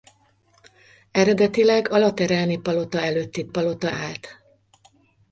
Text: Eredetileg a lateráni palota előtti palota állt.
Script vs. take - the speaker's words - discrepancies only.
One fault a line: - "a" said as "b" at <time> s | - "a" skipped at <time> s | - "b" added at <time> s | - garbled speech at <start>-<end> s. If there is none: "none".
none